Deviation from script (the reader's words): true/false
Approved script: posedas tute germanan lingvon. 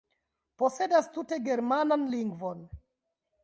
false